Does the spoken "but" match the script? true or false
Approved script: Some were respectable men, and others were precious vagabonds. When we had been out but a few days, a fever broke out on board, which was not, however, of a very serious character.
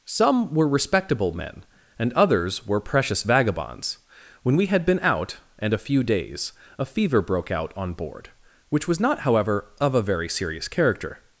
false